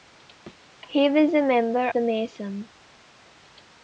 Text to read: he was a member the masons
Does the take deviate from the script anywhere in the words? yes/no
no